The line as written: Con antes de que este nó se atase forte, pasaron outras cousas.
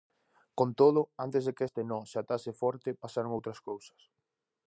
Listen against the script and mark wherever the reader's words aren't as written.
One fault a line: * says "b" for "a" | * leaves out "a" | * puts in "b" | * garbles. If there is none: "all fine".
* puts in "todo"